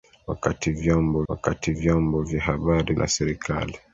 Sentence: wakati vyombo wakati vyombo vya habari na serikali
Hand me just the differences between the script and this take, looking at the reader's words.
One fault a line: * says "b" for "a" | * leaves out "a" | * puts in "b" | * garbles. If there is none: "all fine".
all fine